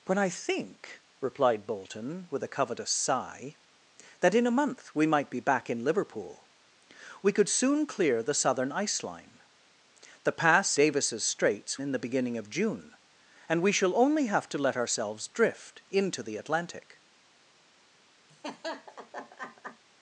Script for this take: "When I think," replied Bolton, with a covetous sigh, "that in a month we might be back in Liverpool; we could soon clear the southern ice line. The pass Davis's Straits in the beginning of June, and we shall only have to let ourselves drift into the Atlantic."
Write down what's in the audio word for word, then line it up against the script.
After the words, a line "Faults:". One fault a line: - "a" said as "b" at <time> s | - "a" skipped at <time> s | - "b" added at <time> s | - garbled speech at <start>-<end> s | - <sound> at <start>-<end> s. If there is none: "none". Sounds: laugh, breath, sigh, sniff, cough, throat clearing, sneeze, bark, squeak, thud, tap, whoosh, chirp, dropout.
"When I think," replied Bolton, with a covetous sigh, "that in a month we might be back in Liverpool; we could soon clear the southern ice line. The pass Davis's Straits in the beginning of June, and we shall only have to let ourselves drift into the Atlantic."
Faults:
- laugh at 18.3-19.8 s